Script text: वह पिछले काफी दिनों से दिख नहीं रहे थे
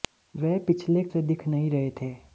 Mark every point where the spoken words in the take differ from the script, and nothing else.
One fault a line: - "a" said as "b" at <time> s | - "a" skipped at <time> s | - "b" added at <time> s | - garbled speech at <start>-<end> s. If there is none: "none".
- "काफी दिनों" skipped at 1.0 s